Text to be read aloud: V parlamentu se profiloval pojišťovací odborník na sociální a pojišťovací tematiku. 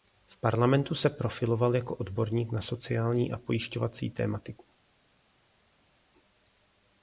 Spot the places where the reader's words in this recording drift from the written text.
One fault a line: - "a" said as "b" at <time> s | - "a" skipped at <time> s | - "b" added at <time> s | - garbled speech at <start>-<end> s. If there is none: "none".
- "pojišťovací" said as "jako" at 1.8 s